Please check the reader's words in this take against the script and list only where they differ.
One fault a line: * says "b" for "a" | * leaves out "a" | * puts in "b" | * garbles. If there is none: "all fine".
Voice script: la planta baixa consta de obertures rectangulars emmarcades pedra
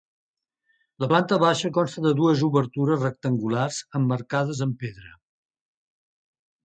* puts in "dues"
* puts in "amb"